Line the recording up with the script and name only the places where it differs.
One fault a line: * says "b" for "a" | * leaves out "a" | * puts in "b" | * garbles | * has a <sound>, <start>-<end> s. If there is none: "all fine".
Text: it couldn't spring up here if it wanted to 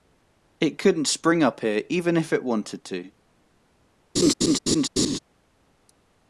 * puts in "even"
* has a laugh, 4.2-5.2 s